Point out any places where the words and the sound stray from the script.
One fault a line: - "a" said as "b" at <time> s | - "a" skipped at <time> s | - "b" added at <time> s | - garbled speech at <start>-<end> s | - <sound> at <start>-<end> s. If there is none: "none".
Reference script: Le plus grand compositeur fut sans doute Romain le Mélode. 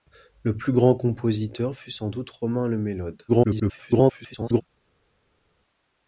- garbled speech at 3.3-4.6 s